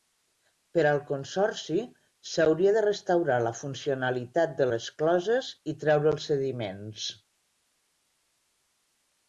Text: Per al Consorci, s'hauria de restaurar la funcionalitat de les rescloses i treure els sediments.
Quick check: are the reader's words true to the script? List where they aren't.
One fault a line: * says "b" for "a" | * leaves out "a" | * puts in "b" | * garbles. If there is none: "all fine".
* leaves out "les"